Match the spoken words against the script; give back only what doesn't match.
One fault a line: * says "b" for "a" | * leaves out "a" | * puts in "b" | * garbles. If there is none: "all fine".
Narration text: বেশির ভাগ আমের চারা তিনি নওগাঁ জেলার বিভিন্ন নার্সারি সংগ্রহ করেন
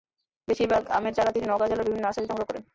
all fine